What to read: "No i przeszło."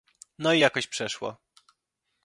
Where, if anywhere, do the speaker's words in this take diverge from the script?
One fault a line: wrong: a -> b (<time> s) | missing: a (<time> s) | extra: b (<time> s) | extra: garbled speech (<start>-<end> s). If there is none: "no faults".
extra: jakoś (0.6 s)